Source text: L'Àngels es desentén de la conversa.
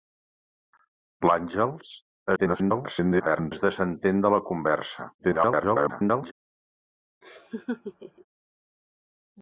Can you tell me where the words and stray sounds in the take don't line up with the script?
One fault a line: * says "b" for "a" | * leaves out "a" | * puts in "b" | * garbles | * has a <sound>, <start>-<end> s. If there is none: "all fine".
* garbles
* garbles
* has a laugh, 7.2-8.3 s